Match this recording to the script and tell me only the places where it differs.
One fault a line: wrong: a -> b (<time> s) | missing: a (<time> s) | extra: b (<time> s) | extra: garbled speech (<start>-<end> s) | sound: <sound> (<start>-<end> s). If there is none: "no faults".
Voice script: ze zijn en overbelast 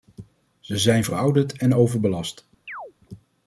extra: verouderd (1.0 s)
sound: chirp (2.7-2.9 s)